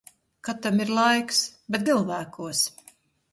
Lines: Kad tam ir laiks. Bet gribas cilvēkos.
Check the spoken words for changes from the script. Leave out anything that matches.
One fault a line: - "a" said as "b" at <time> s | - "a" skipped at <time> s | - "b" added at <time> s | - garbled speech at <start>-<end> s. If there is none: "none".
- "gribas" skipped at 1.9 s